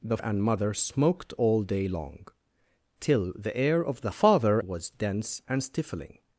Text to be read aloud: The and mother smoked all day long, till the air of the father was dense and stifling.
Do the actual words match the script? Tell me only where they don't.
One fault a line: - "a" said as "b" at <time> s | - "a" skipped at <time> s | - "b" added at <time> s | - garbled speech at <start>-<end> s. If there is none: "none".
none